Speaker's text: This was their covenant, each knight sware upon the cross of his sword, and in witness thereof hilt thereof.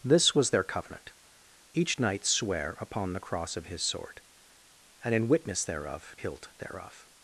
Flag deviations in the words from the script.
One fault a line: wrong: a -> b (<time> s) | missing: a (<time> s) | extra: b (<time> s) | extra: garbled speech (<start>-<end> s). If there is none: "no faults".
no faults